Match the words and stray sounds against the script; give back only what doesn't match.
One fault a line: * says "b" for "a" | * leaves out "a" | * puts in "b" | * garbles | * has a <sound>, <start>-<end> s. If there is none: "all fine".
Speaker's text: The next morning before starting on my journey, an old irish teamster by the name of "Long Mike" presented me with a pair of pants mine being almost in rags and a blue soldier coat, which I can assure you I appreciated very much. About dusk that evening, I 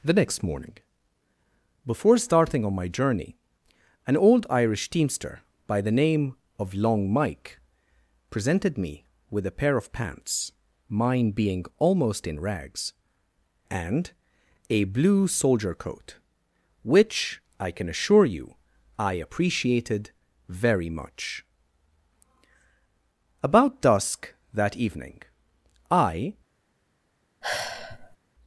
* has a sigh, 27.4-28.2 s